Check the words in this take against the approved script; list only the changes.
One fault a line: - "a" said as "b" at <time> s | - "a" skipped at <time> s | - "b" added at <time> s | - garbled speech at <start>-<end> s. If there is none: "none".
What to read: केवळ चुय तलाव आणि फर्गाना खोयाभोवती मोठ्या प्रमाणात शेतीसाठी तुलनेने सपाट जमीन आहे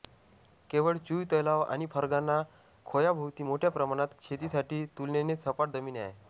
none